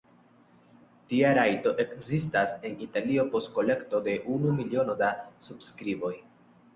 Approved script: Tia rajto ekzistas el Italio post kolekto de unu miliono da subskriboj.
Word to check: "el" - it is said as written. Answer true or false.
false